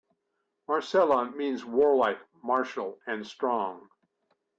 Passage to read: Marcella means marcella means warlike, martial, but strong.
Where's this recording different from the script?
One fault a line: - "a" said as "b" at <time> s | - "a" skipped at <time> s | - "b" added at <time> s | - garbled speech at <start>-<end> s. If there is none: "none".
- "marcella means" skipped at 1.6 s
- "but" said as "and" at 3.1 s